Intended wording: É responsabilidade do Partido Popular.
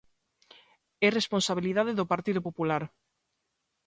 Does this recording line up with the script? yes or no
yes